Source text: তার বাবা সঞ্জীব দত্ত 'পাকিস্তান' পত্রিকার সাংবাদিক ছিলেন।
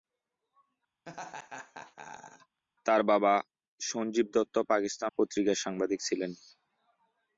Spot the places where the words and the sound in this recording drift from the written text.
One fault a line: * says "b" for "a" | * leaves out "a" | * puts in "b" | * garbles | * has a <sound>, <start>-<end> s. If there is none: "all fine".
* has a laugh, 1.1-2.6 s